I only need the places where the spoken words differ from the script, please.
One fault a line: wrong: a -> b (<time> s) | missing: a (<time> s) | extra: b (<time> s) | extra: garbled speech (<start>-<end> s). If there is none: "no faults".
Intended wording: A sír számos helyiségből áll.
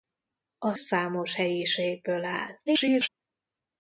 missing: sír (0.8 s)
extra: garbled speech (2.7-3.1 s)